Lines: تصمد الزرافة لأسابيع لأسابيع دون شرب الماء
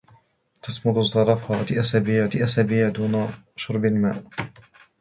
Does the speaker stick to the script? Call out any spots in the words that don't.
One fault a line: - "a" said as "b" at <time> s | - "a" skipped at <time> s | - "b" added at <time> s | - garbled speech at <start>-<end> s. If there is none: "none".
none